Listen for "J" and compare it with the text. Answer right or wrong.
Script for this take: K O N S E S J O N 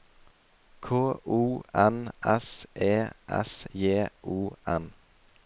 right